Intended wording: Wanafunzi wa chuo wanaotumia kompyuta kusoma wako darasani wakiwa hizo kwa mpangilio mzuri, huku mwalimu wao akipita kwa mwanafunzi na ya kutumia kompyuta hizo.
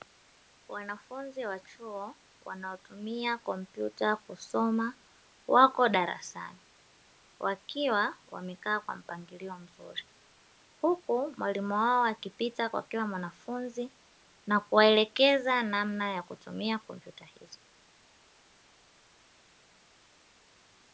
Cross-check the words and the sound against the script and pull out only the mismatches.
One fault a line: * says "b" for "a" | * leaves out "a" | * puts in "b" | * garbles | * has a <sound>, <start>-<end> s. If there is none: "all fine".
* says "wamekaa" for "hizo"
* puts in "kila"
* puts in "kuwaelekeza namna"